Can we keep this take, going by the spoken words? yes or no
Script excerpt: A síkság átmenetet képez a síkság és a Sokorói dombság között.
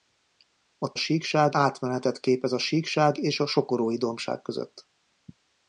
yes